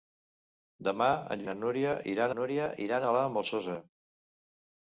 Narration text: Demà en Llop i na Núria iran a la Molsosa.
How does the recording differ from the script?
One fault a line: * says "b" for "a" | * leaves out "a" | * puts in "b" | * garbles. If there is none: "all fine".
* leaves out "Llop"
* puts in "Núria iran"